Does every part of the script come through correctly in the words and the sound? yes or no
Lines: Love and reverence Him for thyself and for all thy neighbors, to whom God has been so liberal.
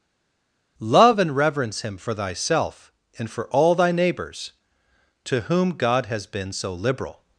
yes